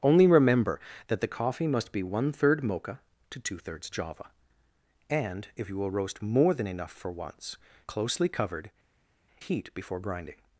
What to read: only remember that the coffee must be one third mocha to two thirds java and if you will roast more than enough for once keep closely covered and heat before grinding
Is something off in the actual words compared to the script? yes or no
yes